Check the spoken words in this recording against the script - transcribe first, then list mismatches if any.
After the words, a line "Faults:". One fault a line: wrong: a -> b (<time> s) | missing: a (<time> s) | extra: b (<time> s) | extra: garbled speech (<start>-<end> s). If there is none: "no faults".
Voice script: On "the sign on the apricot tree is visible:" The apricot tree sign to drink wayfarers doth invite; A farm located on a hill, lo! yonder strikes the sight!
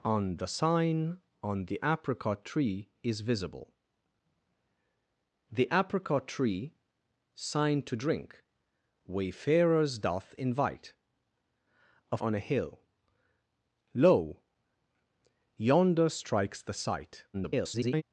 On "the sign on the apricot tree is visible:" The apricot tree sign to drink wayfarers doth invite; A on a hill, lo! yonder strikes the sight! [garbled]
Faults:
missing: farm located (12.2 s)
extra: garbled speech (17.3-18.0 s)